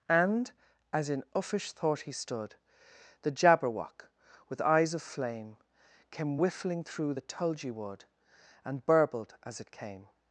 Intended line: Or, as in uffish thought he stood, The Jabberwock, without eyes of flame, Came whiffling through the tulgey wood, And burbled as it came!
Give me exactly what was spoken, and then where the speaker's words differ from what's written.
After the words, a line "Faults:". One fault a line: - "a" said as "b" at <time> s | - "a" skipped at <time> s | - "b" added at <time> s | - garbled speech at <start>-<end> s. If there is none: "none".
And, as in uffish thought he stood, The Jabberwock, with eyes of flame, Came whiffling through the tulgey wood, And burbled as it came!
Faults:
- "Or" said as "And" at 0.1 s
- "without" said as "with" at 4.5 s